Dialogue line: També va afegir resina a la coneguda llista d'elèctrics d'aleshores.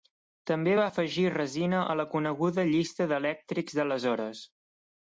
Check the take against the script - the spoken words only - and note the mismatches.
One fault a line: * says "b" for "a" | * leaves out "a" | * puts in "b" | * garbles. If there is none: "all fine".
all fine